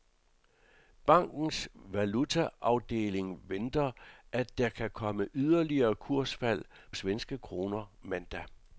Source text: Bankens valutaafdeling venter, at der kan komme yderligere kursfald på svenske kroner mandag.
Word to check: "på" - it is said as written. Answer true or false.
false